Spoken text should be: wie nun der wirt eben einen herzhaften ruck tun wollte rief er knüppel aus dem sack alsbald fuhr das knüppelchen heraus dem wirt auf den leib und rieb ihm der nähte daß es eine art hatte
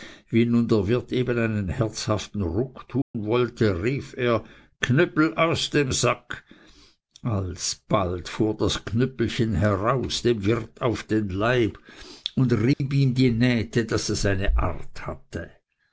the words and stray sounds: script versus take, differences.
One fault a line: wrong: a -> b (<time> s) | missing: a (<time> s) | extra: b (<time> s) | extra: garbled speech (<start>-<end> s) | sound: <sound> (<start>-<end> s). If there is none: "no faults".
sound: dropout (3.0-3.1 s)
sound: dropout (12.7-12.8 s)
wrong: der -> die (13.2 s)